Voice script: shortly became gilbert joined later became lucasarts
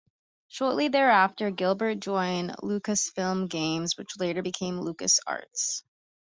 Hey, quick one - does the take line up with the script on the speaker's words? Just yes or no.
no